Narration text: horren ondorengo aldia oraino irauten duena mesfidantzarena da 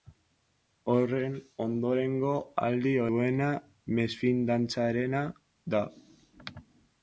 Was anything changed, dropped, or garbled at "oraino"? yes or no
yes